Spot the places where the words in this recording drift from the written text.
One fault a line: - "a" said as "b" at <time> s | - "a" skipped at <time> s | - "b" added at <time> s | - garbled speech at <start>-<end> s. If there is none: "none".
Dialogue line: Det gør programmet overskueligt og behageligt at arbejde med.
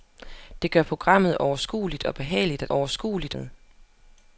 - "arbejde" said as "overskueligt" at 2.7 s